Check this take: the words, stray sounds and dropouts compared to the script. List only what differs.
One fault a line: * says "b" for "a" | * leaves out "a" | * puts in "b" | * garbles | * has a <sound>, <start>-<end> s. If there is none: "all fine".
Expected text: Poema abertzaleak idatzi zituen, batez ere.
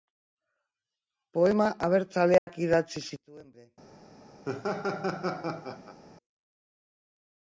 * has a dropout, 2.4-2.5 s
* leaves out "batez"
* has a laugh, 4.4-6.0 s